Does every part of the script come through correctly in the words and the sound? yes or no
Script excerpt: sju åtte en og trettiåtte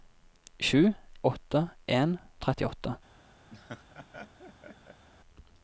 no